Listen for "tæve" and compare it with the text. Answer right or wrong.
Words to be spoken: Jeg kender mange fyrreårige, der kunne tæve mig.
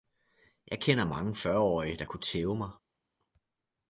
right